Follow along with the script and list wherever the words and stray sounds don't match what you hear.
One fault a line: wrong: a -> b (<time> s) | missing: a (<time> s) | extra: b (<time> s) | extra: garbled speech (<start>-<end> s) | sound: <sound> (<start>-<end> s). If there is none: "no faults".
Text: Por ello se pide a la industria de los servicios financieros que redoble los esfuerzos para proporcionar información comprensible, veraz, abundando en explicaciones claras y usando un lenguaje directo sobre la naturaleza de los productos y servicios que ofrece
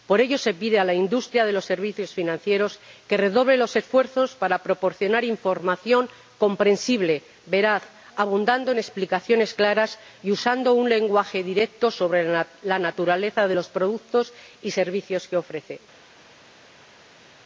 no faults